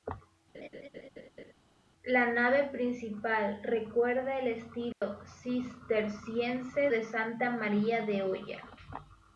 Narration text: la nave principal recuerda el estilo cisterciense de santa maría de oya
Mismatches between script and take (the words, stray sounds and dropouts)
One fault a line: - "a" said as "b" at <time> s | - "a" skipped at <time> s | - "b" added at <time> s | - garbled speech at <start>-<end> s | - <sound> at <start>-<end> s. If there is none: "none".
- laugh at 0.5-1.5 s
- dropout at 4.9-5.0 s